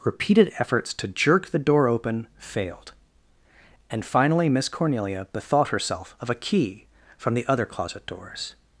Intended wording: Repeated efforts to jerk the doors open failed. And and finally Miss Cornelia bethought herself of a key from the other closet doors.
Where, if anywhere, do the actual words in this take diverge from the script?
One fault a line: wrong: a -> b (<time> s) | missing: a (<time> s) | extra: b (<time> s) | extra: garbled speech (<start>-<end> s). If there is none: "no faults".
wrong: doors -> door (1.6 s)
missing: and (4.0 s)